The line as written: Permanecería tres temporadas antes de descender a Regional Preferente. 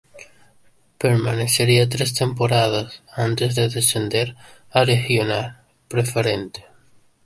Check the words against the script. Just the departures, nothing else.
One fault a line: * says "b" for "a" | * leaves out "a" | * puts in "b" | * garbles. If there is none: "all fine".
all fine